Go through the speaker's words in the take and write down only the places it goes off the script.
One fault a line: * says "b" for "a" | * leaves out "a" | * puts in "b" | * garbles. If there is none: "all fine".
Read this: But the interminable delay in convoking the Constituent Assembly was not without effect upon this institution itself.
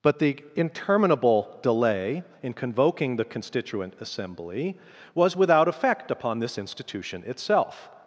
* leaves out "not"